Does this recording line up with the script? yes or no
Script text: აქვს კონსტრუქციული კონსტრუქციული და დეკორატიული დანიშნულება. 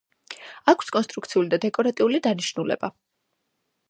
no